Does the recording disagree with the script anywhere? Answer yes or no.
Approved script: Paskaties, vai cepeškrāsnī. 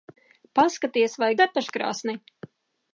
no